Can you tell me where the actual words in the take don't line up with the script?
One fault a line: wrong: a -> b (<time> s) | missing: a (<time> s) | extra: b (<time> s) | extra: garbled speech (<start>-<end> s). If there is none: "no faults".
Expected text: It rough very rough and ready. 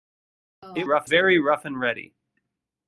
no faults